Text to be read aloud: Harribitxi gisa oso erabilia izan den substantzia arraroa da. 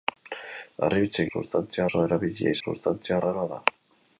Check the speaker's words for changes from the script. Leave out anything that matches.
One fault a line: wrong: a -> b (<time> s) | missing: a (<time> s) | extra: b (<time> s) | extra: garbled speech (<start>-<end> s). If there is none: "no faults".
wrong: gisa -> substantzia (1.4 s)
missing: izan den (2.6 s)